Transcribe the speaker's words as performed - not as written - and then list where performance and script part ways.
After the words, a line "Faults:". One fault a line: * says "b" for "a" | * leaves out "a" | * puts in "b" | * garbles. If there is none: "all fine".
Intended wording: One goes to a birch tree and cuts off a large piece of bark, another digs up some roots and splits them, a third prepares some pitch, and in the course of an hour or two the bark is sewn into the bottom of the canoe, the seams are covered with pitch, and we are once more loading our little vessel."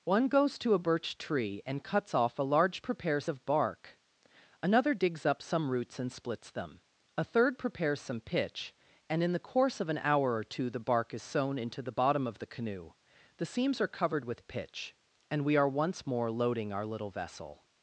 One goes to a birch tree and cuts off a large prepares of bark, another digs up some roots and splits them, a third prepares some pitch, and in the course of an hour or two the bark is sewn into the bottom of the canoe, the seams are covered with pitch, and we are once more loading our little vessel."
Faults:
* says "prepares" for "piece"